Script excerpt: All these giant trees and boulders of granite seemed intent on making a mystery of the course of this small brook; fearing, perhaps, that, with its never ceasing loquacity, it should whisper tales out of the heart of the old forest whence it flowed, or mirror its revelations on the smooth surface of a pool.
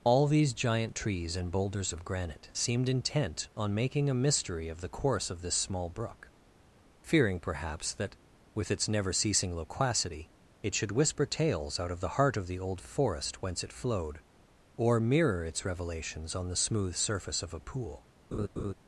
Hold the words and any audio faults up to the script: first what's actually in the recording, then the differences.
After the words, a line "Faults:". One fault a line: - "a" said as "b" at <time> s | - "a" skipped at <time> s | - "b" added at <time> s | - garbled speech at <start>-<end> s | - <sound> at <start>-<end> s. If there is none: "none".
All these giant trees and boulders of granite seemed intent on making a mystery of the course of this small brook; fearing, perhaps, that, with its never ceasing loquacity, it should whisper tales out of the heart of the old forest whence it flowed, or mirror its revelations on the smooth surface of a pool.
Faults:
- laugh at 18.3-18.7 s